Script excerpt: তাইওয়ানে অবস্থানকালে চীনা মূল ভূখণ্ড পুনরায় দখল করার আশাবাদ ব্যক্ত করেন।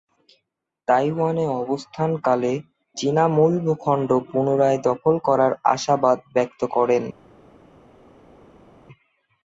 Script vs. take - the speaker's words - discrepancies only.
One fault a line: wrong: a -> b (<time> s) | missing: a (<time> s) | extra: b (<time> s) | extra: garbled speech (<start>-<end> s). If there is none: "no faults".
no faults